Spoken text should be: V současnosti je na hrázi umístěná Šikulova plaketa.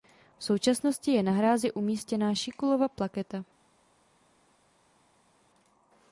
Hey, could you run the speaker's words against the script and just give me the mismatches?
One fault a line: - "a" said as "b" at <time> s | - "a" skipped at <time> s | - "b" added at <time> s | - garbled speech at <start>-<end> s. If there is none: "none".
none